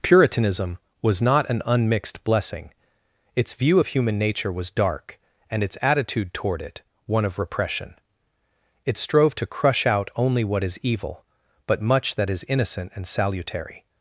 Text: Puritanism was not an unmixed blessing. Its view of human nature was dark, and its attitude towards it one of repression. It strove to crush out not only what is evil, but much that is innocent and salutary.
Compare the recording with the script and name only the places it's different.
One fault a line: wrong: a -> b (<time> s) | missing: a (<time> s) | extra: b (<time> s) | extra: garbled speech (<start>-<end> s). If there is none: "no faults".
wrong: towards -> toward (6.3 s)
missing: not (10.1 s)